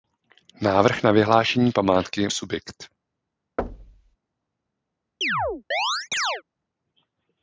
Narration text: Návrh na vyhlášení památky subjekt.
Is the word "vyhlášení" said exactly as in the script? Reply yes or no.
yes